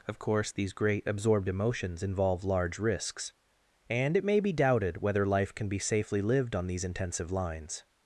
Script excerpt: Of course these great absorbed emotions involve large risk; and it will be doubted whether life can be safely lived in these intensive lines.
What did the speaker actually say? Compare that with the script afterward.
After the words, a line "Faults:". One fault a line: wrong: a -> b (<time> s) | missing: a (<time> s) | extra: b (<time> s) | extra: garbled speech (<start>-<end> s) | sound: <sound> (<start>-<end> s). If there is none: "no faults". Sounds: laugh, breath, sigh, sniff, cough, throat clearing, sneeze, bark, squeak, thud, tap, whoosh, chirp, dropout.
Of course these great absorbed emotions involve large risks; and it may be doubted whether life can be safely lived on these intensive lines.
Faults:
wrong: risk -> risks (2.8 s)
wrong: will -> may (4.2 s)
wrong: in -> on (6.5 s)